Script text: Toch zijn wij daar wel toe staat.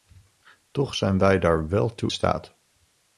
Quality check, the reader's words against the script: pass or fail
pass